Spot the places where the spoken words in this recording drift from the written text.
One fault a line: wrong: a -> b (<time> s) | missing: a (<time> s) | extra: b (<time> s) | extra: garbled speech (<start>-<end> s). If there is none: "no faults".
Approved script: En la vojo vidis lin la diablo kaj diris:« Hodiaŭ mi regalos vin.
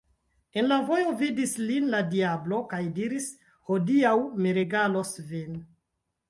no faults